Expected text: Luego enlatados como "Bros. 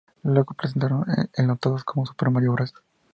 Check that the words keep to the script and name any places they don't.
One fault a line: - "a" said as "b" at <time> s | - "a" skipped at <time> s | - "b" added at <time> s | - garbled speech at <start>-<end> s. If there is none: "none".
- "presentaron" added at 0.6 s
- "Super Mario" added at 2.0 s